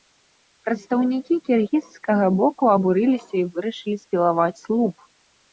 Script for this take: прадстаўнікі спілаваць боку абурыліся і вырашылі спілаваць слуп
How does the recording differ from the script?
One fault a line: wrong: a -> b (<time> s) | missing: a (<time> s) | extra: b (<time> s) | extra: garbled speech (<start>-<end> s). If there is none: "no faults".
wrong: спілаваць -> кіргізскага (1.5 s)